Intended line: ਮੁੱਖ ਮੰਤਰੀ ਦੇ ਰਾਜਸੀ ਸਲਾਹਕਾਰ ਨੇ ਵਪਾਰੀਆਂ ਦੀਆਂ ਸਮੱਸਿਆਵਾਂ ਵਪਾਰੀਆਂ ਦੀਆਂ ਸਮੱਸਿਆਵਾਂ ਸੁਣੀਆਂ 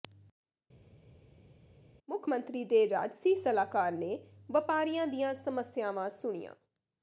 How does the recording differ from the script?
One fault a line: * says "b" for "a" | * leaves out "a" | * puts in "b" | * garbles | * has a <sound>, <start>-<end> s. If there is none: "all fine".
* leaves out "ਵਪਾਰੀਆਂ ਦੀਆਂ ਸਮੱਸਿਆਵਾਂ"